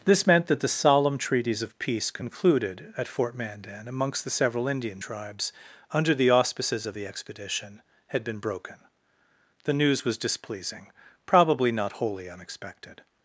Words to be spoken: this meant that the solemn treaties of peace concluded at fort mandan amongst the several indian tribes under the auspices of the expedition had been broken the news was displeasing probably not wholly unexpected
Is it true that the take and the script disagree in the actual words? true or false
false